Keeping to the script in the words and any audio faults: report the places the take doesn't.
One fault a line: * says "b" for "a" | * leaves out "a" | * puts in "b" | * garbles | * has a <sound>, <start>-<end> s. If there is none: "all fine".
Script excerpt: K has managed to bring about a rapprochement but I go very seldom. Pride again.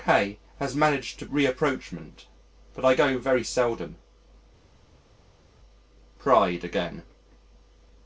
* leaves out "bring about a"